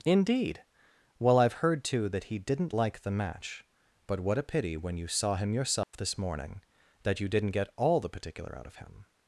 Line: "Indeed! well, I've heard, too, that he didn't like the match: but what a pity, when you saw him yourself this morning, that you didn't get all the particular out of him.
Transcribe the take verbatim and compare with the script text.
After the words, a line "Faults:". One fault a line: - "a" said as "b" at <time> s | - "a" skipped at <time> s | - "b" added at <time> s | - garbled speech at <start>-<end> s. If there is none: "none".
"Indeed! well, I've heard, too, that he didn't like the match: but what a pity, when you saw him yourself this morning, that you didn't get all the particular out of him.
Faults:
none